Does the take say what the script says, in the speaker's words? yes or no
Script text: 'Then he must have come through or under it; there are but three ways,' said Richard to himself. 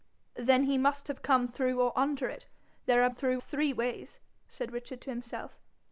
no